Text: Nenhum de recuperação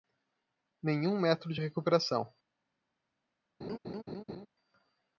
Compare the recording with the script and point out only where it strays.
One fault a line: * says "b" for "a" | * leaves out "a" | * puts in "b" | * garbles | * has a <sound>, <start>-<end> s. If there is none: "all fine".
* puts in "método"
* has a laugh, 3.6-4.5 s